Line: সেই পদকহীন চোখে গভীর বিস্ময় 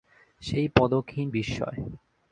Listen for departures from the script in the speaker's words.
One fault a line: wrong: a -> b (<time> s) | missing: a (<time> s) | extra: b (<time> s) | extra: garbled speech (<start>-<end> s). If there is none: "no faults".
missing: চোখে গভীর (1.3 s)